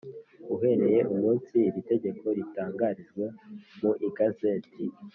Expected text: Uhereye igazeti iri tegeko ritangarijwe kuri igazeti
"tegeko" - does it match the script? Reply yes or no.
yes